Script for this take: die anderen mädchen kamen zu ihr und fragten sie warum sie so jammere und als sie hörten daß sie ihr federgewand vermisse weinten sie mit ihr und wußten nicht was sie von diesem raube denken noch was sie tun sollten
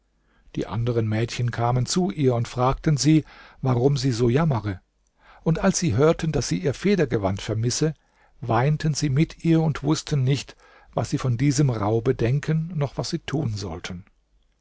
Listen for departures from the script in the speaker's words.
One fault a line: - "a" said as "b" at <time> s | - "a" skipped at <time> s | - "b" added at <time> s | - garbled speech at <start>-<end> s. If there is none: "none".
none